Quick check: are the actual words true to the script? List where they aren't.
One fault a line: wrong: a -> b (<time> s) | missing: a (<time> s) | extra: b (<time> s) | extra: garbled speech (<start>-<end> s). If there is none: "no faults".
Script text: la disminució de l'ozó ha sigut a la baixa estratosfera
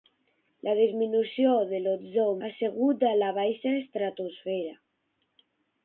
no faults